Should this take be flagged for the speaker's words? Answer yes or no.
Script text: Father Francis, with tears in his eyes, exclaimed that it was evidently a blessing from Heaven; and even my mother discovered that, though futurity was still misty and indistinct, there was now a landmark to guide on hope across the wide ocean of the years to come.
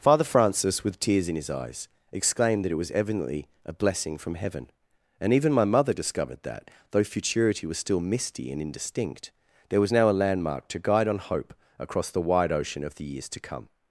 no